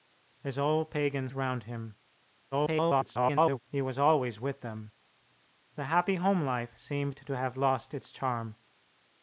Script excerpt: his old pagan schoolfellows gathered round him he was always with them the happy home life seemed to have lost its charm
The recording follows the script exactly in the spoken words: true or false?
false